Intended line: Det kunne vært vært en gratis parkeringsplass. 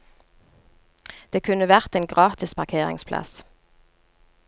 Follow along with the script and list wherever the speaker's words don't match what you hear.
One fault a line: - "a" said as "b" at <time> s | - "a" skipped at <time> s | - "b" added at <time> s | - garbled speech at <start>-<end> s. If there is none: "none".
- "vært" skipped at 1.9 s